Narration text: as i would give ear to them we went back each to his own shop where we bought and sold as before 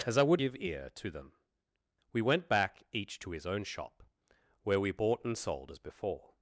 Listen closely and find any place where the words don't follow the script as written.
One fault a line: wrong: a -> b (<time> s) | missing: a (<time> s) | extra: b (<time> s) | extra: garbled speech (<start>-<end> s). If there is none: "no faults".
no faults